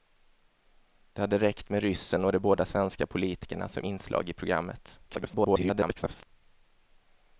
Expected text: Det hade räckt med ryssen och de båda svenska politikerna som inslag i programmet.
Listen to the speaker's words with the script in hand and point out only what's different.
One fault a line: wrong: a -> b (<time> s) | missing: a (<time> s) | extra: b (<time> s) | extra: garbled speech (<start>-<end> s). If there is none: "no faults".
extra: garbled speech (5.1-6.3 s)